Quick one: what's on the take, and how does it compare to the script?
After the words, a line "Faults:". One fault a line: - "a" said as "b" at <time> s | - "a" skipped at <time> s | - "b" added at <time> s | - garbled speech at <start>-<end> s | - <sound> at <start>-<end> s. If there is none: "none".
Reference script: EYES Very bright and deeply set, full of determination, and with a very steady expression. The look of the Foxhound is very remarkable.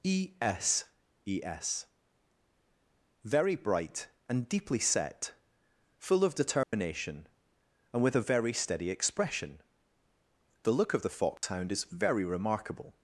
E s e s Very bright and deeply set, full of determination, and with a very steady expression. The look of the Foxhound is very remarkable.
Faults:
- "EYES" said as "E s e s" at 0.0 s
- dropout at 6.6-6.7 s
- dropout at 11.4-11.4 s